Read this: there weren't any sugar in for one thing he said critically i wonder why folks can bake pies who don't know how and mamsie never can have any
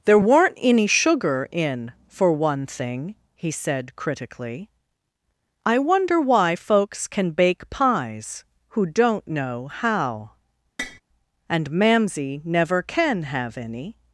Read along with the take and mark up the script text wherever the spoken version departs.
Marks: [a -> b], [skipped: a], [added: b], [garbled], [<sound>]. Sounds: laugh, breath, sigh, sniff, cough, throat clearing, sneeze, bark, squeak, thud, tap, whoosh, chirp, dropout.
there weren't any sugar in for one thing he said critically i wonder why folks can bake pies who don't know how [tap] and mamsie never can have any